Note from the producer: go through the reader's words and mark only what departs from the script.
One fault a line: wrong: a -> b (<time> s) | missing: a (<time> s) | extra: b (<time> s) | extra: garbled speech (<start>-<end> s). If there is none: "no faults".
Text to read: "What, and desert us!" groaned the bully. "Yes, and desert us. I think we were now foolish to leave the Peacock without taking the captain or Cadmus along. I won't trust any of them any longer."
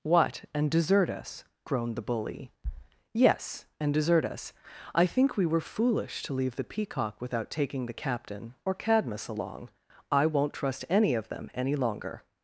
missing: now (5.6 s)